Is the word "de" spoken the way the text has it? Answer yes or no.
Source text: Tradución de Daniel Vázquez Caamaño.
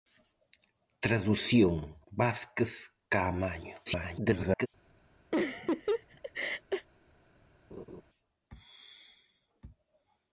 no